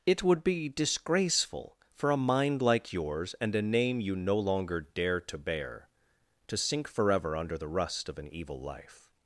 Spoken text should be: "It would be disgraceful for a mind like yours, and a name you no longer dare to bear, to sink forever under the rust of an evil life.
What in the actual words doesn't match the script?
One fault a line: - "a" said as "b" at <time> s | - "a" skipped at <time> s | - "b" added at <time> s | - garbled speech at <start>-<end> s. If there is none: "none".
none